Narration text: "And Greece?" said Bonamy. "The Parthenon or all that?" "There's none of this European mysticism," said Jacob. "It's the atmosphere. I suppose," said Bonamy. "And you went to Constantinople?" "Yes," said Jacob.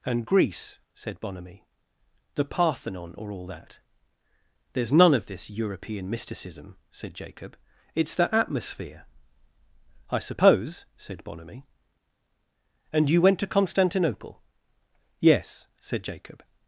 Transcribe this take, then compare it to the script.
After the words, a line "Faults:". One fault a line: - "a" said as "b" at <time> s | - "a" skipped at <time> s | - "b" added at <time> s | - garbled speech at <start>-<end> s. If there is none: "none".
"And Greece?" said Bonamy. "The Parthenon or all that?" "There's none of this European mysticism," said Jacob. "It's the atmosphere. I suppose," said Bonamy. "And you went to Constantinople?" "Yes," said Jacob.
Faults:
none